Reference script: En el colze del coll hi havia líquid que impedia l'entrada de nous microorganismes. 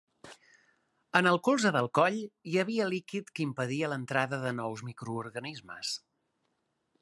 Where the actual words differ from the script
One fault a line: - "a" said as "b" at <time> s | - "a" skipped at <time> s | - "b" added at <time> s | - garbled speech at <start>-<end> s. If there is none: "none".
none